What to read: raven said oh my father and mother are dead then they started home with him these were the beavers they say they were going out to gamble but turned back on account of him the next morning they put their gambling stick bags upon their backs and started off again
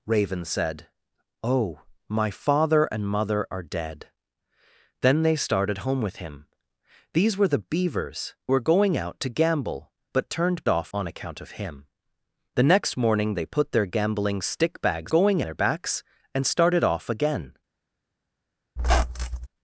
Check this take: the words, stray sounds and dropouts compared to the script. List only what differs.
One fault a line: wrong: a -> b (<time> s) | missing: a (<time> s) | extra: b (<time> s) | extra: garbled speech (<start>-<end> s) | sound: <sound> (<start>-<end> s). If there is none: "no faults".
missing: they say they (8.3 s)
wrong: back -> off (10.7 s)
wrong: upon -> going (15.1 s)
sound: squeak (18.8-19.5 s)